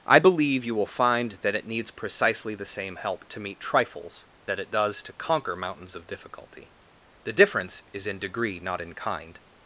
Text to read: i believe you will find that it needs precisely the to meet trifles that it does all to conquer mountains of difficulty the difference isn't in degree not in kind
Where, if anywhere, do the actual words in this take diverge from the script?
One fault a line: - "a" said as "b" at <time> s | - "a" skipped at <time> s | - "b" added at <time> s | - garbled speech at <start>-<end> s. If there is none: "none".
- "same help" added at 2.6 s
- "all" skipped at 5.0 s
- "isn't" said as "is" at 7.9 s